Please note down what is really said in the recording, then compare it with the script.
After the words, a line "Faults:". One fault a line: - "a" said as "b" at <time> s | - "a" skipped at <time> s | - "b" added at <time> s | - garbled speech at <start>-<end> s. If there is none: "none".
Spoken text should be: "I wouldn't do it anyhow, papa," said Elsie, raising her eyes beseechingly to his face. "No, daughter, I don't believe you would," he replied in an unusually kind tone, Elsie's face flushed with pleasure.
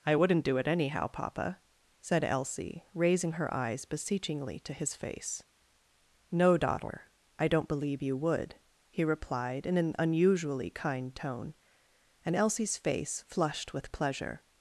"I wouldn't do it anyhow, papa," said Elsie, raising her eyes beseechingly to his face. "No, daughter, I don't believe you would," he replied in an unusually kind tone, and Elsie's face flushed with pleasure.
Faults:
- "and" added at 12.2 s